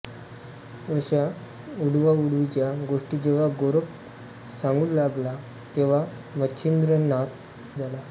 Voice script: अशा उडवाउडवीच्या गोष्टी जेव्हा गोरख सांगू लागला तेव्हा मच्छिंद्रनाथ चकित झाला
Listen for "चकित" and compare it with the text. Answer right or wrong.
wrong